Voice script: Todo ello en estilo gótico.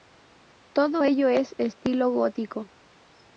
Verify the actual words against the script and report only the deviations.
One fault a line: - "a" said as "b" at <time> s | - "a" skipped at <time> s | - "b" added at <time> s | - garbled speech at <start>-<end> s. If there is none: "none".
none